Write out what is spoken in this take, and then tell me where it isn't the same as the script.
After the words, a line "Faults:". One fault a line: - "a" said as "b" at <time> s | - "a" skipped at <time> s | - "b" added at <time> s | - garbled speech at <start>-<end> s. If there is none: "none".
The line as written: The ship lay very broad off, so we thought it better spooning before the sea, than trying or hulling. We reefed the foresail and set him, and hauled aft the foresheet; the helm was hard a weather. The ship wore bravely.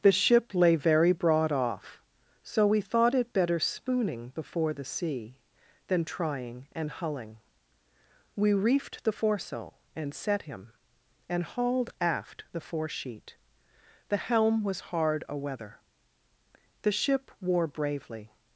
The ship lay very broad off, so we thought it better spooning before the sea, than trying and hulling. We reefed the foresail and set him, and hauled aft the foresheet; the helm was hard a weather. The ship wore bravely.
Faults:
- "or" said as "and" at 6.7 s